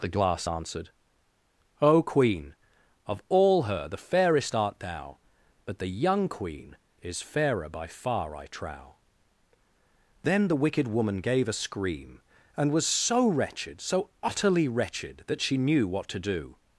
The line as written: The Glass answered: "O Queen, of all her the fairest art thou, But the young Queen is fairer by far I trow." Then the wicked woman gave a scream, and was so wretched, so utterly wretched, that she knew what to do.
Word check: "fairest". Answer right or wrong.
right